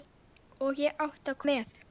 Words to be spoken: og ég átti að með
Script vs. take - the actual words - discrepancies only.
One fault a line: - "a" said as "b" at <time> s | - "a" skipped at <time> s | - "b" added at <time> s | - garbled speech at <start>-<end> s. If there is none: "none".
none